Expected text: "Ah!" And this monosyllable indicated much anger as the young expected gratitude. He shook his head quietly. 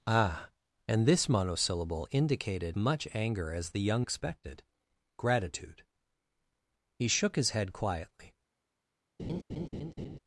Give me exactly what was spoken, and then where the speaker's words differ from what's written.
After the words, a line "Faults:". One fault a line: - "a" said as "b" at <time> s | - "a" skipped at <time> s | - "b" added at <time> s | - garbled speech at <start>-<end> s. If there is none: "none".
"Ah!" And this monosyllable indicated much anger as the young expected gratitude. He shook his head quietly.
Faults:
none